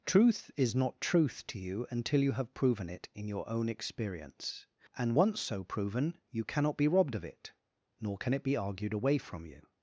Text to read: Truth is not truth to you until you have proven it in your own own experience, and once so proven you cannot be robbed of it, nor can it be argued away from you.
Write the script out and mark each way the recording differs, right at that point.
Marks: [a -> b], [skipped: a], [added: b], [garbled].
Truth is not truth to you until you have proven it in your own [skipped: own] experience, and once so proven you cannot be robbed of it, nor can it be argued away from you.